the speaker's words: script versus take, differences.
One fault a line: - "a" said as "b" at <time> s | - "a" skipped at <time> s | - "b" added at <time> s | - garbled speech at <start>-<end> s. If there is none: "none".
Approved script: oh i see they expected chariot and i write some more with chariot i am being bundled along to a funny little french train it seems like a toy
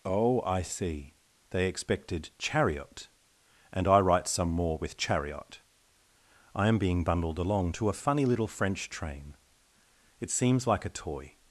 none